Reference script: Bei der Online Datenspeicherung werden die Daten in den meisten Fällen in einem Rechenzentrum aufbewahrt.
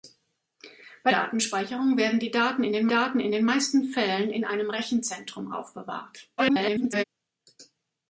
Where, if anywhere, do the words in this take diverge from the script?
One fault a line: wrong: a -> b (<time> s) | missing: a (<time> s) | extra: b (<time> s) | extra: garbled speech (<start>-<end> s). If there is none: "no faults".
missing: der Online (1.1 s)
extra: Daten in den (2.9 s)
extra: garbled speech (6.4-7.0 s)